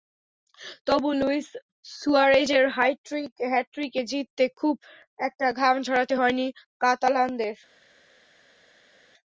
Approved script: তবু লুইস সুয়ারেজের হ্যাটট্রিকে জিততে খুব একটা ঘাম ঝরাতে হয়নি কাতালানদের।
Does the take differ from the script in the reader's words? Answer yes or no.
no